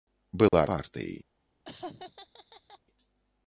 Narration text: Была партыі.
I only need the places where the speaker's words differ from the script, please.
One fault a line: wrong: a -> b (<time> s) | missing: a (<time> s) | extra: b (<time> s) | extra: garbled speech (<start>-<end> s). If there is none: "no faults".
no faults